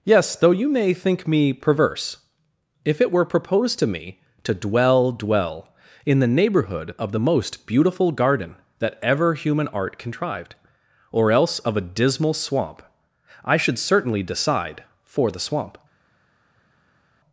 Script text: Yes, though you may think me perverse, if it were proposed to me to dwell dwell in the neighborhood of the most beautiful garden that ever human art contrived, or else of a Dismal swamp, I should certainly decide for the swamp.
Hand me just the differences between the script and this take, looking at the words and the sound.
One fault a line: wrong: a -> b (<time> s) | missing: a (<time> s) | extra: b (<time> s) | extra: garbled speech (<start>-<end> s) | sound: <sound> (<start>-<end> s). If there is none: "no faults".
no faults